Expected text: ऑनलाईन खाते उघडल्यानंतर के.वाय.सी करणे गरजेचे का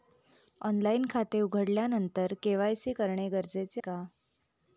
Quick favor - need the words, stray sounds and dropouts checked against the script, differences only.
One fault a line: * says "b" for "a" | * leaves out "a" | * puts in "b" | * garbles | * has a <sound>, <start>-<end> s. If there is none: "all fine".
all fine